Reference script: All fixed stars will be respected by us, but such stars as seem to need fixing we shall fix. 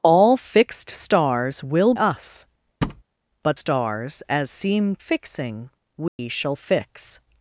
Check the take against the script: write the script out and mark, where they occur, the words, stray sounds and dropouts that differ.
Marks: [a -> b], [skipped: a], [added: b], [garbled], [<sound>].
All fixed stars will [skipped: be respected by] us, [thud] but [skipped: such] stars as seem [skipped: to need] fixing we [dropout] shall fix.